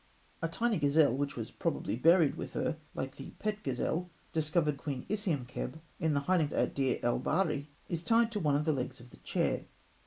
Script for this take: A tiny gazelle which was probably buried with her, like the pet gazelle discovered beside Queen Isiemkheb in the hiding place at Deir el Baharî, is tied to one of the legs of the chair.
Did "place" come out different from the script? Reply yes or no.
yes